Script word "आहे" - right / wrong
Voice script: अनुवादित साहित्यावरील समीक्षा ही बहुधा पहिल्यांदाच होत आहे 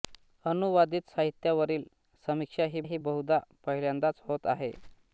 right